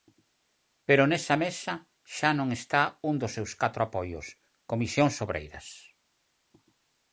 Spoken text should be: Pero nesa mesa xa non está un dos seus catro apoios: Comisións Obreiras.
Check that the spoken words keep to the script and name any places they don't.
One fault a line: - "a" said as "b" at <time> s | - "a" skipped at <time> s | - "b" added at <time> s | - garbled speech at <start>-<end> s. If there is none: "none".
none